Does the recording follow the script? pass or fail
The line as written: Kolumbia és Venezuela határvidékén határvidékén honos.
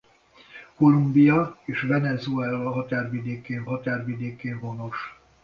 pass